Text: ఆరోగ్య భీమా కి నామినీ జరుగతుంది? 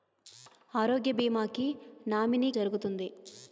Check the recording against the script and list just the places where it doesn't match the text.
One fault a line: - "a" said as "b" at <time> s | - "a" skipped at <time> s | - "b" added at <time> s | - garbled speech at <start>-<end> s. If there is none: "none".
none